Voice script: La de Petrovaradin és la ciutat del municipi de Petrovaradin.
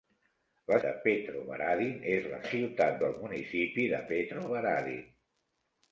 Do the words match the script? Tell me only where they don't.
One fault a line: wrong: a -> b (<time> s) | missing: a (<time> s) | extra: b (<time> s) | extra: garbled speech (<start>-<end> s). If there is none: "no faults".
no faults